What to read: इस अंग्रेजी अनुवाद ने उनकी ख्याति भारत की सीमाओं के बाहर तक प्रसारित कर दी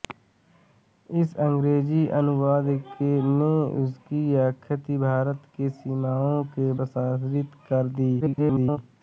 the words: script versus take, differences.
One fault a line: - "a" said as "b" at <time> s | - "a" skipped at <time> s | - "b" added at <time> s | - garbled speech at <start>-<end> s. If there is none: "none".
- "बाहर तक" skipped at 6.7 s
- garbled speech at 8.2-8.8 s